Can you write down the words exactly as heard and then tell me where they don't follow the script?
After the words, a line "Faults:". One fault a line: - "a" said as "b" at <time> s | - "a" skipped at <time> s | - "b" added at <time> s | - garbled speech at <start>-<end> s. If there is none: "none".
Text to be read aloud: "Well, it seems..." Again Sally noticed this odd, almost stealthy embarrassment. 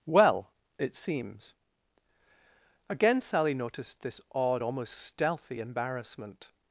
"Well, it seems..." Again Sally noticed this odd, almost stealthy embarrassment.
Faults:
none